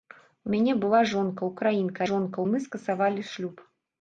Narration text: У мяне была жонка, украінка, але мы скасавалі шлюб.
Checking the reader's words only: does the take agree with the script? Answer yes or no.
no